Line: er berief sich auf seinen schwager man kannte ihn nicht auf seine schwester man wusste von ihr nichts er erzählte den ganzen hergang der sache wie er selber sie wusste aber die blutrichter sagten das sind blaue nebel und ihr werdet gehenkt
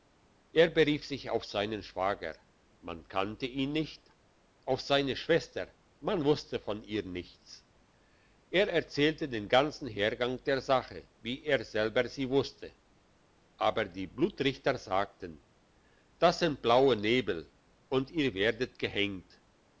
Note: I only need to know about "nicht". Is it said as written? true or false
true